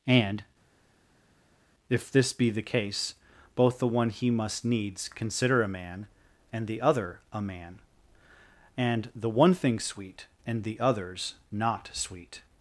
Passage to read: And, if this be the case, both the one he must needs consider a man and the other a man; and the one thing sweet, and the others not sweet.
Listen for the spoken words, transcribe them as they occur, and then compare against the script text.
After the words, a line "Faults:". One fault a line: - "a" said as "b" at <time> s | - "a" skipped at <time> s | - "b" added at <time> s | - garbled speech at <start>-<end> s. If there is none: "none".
And, if this be the case, both the one he must needs consider a man and the other a man; and the one thing sweet, and the others not sweet.
Faults:
none